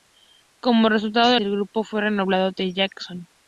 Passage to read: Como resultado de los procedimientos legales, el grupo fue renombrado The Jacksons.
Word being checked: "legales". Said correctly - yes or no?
no